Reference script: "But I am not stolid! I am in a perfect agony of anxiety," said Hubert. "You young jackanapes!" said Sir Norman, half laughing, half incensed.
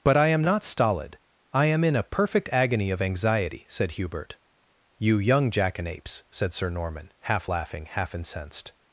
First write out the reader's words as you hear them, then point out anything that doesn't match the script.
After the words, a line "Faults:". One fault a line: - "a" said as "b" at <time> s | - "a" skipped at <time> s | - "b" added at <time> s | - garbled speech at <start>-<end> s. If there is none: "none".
"But I am not stolid! I am in a perfect agony of anxiety," said Hubert. "You young jackanapes!" said Sir Norman, half laughing, half incensed.
Faults:
none